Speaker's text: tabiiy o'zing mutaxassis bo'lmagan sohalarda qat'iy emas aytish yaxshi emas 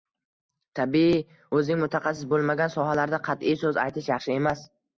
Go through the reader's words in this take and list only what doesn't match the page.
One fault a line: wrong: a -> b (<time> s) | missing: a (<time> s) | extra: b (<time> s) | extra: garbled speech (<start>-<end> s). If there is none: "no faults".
wrong: emas -> so'z (3.7 s)